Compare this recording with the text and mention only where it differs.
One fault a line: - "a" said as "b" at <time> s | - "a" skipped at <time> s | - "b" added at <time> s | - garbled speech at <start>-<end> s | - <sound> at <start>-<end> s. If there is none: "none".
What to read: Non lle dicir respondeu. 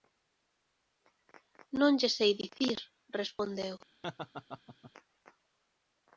- "sei" added at 2.2 s
- laugh at 4.0-4.9 s